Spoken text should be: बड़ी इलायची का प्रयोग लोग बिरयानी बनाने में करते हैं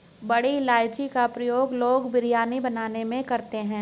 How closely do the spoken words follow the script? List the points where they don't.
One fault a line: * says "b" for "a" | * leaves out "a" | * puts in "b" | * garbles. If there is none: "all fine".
all fine